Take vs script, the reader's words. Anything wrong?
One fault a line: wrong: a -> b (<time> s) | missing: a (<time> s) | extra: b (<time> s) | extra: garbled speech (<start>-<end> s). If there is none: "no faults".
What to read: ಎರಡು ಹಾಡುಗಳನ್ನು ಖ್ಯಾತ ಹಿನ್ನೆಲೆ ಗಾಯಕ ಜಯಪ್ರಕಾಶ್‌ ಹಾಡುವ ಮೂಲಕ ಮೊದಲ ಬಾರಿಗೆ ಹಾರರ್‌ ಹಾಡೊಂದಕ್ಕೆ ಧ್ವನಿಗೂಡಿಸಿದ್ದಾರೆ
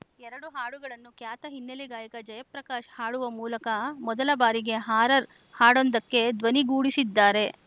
no faults